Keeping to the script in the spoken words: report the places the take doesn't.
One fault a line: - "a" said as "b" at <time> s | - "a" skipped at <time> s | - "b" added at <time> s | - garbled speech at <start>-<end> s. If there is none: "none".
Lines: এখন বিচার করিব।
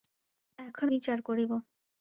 none